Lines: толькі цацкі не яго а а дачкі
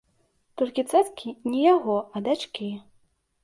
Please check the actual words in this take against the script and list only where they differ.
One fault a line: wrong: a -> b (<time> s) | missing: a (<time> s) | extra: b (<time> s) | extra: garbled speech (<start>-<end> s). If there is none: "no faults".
missing: а (2.3 s)